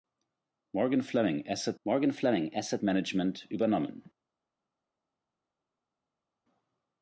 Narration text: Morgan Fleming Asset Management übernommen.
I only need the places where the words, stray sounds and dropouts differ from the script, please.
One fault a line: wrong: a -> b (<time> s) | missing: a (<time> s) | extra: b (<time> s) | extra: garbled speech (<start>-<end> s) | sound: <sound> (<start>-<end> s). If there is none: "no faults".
extra: morgan Fleming Asset (1.8 s)